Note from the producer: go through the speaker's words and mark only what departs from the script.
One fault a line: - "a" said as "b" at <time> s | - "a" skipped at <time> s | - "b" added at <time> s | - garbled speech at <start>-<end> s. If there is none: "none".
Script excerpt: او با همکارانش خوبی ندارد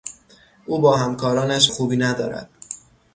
none